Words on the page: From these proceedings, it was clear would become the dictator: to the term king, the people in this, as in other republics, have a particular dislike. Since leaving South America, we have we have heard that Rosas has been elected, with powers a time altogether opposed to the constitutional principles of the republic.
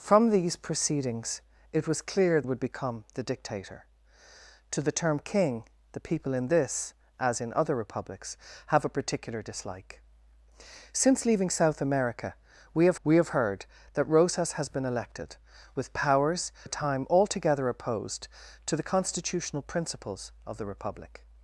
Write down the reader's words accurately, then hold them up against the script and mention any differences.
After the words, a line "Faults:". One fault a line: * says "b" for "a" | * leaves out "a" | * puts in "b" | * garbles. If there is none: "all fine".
From these proceedings, it was clear would become the dictator: to the term king, the people in this, as in other republics, have a particular dislike. Since leaving South America, we have we have heard that Rosas has been elected, with powers a time altogether opposed to the constitutional principles of the republic.
Faults:
all fine